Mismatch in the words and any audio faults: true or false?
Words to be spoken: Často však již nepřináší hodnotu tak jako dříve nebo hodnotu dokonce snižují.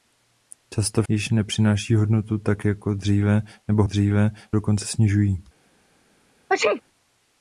true